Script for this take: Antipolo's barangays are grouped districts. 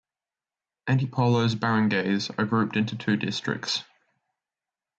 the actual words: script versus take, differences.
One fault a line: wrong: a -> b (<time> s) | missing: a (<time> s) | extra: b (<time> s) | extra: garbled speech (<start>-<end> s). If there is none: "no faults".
extra: into two (2.8 s)